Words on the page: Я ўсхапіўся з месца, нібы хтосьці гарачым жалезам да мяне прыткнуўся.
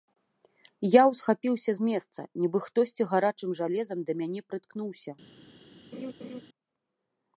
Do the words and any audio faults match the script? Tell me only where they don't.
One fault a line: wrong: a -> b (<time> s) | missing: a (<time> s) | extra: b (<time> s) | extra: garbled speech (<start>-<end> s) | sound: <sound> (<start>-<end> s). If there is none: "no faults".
sound: laugh (5.9-6.4 s)